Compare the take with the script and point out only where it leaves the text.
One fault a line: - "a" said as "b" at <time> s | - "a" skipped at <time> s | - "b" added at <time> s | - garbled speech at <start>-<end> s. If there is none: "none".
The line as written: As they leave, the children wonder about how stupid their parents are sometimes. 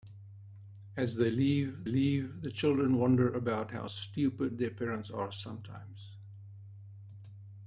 - "leave" added at 1.8 s